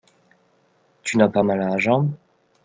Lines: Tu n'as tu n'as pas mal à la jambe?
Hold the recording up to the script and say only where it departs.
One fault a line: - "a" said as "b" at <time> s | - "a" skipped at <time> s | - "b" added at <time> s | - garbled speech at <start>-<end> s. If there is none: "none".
- "tu n'as" skipped at 1.3 s